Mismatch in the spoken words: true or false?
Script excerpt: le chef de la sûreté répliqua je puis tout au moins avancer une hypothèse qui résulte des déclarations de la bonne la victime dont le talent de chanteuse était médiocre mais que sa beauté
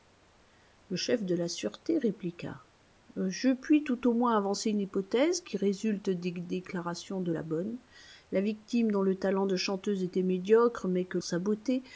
false